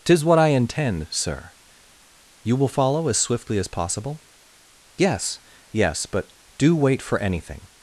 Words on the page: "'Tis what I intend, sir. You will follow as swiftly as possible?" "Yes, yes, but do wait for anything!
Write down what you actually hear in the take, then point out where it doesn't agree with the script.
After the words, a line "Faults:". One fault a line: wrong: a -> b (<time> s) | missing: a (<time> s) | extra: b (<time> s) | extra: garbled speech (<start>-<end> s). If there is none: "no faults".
"'Tis what I intend, sir. You will follow as swiftly as possible?" "Yes, yes, but do wait for anything!
Faults:
no faults